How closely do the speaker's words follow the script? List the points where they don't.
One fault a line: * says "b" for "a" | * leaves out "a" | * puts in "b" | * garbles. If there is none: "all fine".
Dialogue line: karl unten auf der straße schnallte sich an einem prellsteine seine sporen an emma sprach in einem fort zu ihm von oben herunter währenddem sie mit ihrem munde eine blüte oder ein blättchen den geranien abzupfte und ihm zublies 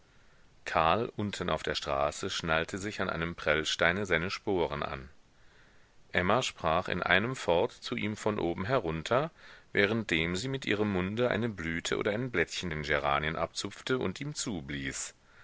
all fine